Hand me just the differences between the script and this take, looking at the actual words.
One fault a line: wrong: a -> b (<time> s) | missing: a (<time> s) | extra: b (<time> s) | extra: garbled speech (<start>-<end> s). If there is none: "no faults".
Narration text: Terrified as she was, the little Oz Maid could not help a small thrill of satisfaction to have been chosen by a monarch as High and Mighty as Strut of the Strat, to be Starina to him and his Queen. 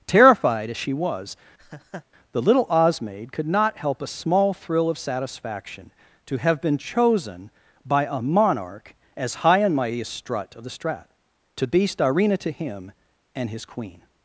no faults